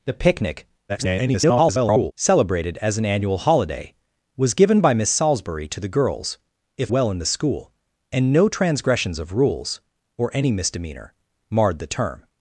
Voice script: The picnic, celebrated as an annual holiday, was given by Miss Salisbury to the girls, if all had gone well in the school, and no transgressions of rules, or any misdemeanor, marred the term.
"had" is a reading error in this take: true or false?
true